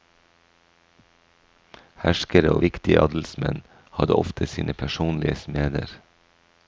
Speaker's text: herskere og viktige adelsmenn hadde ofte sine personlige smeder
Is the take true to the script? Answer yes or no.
yes